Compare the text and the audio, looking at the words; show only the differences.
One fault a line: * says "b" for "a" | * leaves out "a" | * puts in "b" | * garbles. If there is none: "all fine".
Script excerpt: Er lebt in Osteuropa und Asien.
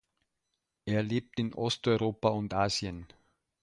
all fine